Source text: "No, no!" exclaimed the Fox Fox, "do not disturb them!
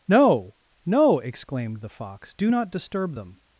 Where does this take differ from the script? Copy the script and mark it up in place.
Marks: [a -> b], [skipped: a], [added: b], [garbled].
"No, no!" exclaimed the Fox [skipped: Fox,] "do not disturb them!